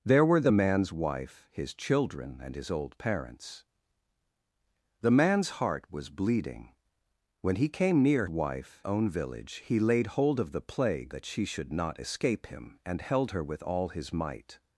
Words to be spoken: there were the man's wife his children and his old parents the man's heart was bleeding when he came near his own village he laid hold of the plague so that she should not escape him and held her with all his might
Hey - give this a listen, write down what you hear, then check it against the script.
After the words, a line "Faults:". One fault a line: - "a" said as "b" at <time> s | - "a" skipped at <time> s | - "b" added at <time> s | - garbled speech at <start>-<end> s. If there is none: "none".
there were the man's wife his children and his old parents the man's heart was bleeding when he came near wife own village he laid hold of the plague that she should not escape him and held her with all his might
Faults:
- "his" said as "wife" at 8.3 s
- "so" skipped at 11.1 s